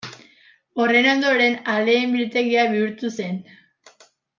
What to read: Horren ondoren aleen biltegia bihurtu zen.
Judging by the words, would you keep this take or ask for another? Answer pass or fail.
pass